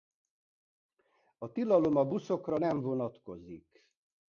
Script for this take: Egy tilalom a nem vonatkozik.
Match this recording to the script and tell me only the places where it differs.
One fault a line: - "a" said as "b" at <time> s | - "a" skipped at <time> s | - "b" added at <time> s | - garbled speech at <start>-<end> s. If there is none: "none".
- "Egy" said as "A" at 1.4 s
- "buszokra" added at 2.0 s